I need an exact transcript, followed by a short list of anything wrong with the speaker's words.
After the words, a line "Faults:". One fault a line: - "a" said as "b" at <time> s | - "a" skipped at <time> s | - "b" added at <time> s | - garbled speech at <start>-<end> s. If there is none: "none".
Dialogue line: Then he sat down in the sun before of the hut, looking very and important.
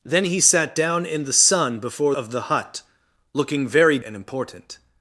Then he sat down in the sun before of the hut, looking very and important.
Faults:
none